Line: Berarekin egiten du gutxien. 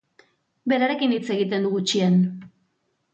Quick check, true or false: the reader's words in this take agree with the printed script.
false